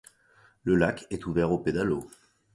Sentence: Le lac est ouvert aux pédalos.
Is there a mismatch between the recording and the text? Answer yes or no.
no